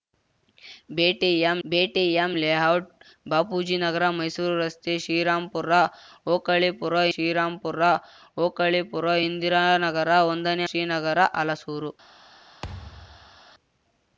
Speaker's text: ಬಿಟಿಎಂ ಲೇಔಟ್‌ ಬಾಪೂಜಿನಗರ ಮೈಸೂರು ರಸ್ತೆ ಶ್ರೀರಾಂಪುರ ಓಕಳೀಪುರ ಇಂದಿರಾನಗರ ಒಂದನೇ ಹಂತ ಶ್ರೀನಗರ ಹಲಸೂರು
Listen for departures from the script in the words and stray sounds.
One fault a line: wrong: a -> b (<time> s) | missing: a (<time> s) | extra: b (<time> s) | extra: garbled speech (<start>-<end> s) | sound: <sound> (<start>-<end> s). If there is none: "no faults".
extra: ಬಿಟಿಎಂ (1.6 s)
extra: ಶ್ರೀರಾಂಪುರ ಓಕಳೀಪುರ (7.1 s)
missing: ಹಂತ (10.7 s)
sound: thud (12.6-13.4 s)